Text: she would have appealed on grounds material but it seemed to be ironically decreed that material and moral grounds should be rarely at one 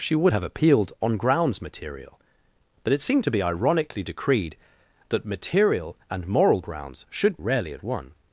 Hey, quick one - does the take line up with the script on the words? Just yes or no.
no